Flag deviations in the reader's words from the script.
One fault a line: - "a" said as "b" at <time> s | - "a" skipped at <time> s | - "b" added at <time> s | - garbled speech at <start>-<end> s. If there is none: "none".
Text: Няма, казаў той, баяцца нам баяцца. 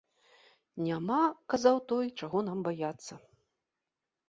- "баяцца" said as "чаго" at 2.2 s